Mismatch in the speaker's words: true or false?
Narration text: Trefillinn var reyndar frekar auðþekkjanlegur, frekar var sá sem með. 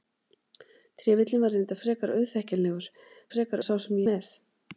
false